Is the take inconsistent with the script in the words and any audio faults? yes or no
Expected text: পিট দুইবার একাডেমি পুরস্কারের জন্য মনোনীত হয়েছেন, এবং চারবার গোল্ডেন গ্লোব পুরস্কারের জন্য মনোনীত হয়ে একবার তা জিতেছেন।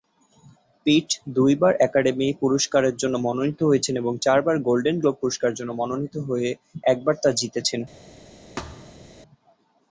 yes